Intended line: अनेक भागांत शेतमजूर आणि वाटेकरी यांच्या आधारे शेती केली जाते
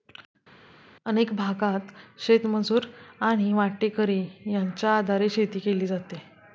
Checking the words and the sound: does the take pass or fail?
pass